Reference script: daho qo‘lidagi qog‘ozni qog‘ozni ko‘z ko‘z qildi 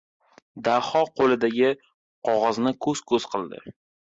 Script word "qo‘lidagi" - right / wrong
right